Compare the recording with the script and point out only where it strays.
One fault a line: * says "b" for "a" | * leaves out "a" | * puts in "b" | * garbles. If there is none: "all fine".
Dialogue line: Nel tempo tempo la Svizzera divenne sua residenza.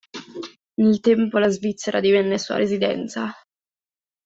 * leaves out "tempo"